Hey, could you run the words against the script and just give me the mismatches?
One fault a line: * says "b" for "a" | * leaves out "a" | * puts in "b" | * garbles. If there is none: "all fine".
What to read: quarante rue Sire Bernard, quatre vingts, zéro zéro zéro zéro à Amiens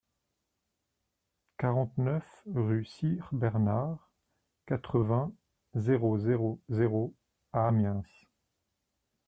* puts in "neuf"
* leaves out "zéro"